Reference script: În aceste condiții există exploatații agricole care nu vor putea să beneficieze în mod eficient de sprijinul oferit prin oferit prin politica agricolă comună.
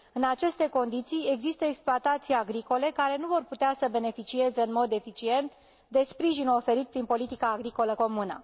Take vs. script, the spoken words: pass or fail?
fail